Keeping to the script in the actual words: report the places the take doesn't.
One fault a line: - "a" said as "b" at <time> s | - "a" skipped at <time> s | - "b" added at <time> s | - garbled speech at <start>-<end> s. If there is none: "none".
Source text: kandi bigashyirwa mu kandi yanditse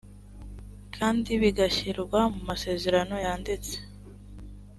- "kandi" said as "masezerano" at 2.5 s